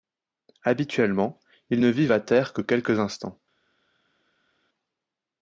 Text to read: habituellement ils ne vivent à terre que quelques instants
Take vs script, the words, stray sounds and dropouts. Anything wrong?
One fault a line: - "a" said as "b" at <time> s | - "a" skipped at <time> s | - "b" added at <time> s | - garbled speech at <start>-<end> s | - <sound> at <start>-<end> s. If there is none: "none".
none